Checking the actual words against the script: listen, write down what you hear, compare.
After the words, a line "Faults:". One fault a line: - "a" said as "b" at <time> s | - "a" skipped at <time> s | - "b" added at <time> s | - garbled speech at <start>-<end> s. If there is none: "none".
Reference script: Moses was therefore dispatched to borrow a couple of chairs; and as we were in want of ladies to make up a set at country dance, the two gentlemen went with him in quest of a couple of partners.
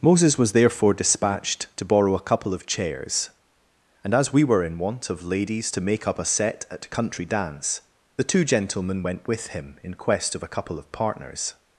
Moses was therefore dispatched to borrow a couple of chairs; and as we were in want of ladies to make up a set at country dance, the two gentlemen went with him in quest of a couple of partners.
Faults:
none